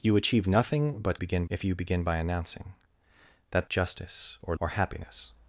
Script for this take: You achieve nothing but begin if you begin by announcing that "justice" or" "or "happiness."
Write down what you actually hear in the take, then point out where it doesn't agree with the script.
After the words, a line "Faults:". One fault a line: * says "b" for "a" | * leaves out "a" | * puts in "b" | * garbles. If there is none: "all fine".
You achieve nothing but begin if you begin by announcing that "justice" or" "or "happiness."
Faults:
all fine